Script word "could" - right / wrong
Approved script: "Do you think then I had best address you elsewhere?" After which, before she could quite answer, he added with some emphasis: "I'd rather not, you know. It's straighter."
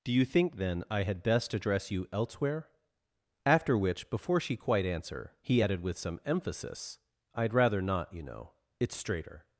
wrong